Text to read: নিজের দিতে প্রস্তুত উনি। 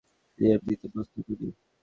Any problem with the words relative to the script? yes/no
no